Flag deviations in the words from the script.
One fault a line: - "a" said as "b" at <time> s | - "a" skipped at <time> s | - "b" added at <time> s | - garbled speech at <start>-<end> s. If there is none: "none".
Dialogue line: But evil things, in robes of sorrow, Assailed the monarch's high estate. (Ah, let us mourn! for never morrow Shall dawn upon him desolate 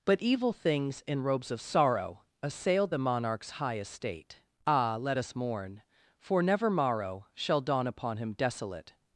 none